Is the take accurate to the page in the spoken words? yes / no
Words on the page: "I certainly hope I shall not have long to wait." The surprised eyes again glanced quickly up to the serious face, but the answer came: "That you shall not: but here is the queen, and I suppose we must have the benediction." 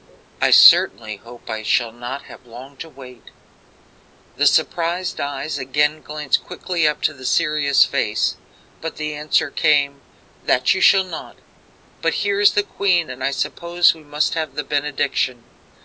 yes